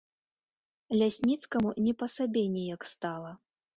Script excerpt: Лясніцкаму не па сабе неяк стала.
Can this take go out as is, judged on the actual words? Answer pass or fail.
pass